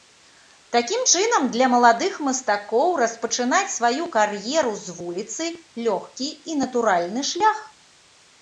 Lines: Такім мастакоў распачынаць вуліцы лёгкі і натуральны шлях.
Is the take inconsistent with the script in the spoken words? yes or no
yes